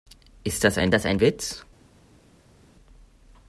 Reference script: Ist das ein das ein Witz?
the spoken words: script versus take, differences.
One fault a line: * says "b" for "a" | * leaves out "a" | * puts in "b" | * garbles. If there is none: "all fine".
all fine